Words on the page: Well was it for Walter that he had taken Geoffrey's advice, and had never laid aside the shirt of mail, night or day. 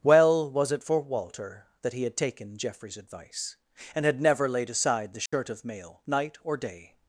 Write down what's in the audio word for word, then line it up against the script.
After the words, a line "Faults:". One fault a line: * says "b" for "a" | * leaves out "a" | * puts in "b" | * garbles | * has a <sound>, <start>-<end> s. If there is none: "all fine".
Well was it for Walter that he had taken Geoffrey's advice, and had never laid aside the shirt of mail, night or day.
Faults:
* has a dropout, 5.3-5.3 s